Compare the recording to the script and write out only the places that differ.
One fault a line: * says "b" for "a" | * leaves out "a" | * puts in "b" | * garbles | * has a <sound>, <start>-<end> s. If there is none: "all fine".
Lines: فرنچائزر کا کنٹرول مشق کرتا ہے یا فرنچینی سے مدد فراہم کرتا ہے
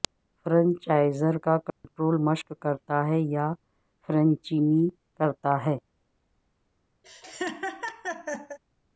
* has a dropout, 1.7-1.8 s
* leaves out "سے مدد فراہم"
* has a laugh, 7.0-8.6 s